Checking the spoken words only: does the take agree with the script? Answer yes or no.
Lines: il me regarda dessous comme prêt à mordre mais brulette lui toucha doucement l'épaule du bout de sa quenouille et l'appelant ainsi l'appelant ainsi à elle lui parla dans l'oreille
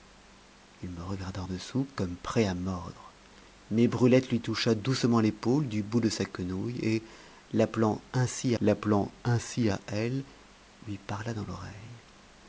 yes